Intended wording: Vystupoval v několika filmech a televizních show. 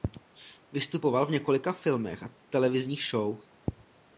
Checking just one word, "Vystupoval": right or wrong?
right